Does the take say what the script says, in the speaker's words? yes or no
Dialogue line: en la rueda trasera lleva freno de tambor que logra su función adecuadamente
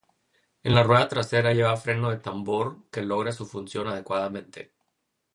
yes